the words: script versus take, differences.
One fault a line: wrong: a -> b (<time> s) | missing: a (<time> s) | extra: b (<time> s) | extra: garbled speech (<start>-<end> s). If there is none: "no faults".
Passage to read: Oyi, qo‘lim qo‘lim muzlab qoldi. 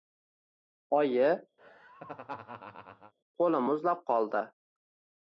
missing: qo‘lim (3.7 s)